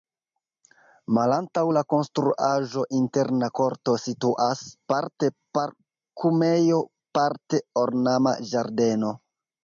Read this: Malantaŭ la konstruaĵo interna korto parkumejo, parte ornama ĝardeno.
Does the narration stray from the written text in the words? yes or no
yes